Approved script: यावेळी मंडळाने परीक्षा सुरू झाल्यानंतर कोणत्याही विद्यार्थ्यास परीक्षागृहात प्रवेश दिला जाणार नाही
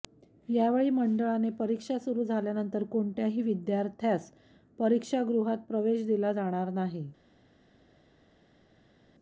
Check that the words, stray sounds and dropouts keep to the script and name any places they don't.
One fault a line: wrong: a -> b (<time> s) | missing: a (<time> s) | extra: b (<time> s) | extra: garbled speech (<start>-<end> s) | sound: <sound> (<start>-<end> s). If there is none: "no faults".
no faults